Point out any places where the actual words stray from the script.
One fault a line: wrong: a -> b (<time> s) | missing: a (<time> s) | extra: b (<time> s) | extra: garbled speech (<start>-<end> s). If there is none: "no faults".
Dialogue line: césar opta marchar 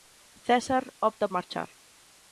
no faults